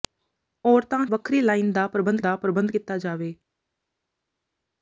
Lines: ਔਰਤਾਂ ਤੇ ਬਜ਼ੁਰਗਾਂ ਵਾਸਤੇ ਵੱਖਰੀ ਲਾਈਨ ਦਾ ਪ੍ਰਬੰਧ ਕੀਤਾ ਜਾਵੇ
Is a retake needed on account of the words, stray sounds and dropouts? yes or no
yes